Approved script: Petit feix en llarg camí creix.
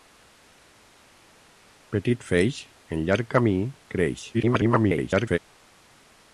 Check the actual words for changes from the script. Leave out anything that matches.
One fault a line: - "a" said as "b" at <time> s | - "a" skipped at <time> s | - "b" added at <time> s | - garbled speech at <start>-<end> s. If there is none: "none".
- garbled speech at 4.3-5.4 s